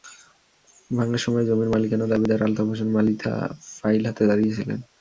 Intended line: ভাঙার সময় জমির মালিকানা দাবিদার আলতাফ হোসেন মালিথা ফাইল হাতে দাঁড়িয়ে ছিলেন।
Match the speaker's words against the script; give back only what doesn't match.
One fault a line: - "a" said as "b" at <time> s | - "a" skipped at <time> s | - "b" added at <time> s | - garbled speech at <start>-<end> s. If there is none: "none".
none